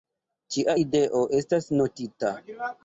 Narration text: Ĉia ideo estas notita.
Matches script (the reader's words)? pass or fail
pass